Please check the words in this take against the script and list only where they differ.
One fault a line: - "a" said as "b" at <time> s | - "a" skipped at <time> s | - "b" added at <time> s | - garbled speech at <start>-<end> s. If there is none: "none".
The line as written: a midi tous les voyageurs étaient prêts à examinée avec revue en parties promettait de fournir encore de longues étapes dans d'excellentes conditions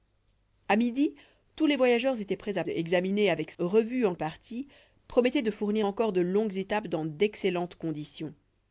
none